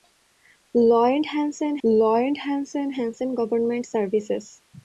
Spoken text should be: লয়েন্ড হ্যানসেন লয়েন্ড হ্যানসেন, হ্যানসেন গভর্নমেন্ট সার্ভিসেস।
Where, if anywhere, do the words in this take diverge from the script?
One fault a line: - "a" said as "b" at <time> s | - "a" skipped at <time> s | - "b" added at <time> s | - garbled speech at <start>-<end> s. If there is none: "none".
none